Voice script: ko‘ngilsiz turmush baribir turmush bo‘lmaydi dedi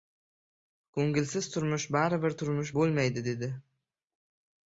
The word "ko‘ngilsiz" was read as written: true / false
true